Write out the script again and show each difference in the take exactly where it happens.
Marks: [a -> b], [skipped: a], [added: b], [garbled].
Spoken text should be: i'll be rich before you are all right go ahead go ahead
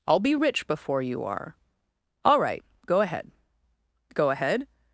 i'll be rich before you are all right go ahead go ahead